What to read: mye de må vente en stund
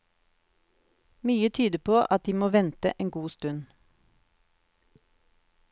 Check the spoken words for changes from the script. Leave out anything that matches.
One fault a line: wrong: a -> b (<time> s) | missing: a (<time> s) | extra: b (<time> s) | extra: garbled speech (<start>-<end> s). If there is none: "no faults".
extra: tyder på at (1.5 s)
extra: god (3.1 s)